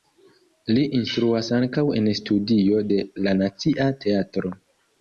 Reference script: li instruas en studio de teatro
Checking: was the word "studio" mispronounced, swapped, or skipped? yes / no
no